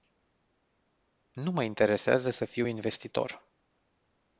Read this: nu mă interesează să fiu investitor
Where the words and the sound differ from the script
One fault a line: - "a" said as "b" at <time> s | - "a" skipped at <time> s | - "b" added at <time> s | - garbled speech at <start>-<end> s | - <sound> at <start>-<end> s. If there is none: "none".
none